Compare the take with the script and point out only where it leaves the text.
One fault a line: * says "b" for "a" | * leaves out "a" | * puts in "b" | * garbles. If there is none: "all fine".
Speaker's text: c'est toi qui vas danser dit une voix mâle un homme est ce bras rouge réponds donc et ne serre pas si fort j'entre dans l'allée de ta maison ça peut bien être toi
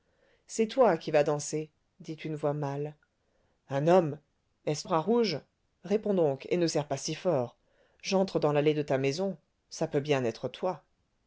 all fine